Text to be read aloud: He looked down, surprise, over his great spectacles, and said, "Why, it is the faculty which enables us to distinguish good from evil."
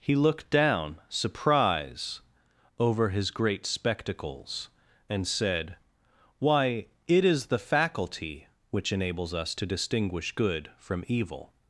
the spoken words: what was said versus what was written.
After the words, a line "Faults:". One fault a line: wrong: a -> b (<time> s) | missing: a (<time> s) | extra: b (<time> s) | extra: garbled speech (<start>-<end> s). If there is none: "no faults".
He looked down, surprise, over his great spectacles, and said, "Why, it is the faculty which enables us to distinguish good from evil."
Faults:
no faults